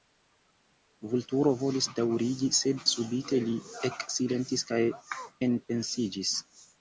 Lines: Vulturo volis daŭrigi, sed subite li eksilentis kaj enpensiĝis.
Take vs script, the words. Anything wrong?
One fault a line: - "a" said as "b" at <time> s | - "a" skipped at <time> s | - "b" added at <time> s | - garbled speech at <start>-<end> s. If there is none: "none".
none